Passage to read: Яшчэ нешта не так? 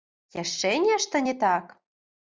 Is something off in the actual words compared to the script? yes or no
no